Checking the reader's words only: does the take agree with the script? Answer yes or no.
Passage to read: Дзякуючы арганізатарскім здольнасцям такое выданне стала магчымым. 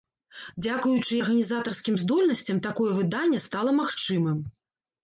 yes